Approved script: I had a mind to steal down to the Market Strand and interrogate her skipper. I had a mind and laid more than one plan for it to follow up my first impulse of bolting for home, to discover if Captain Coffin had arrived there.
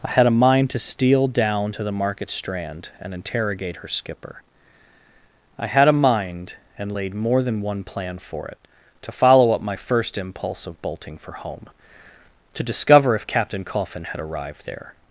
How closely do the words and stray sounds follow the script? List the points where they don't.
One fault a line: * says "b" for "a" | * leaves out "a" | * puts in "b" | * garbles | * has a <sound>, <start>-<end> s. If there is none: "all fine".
all fine